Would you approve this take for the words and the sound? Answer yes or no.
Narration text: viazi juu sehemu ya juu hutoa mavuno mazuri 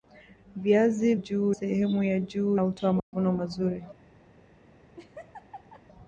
no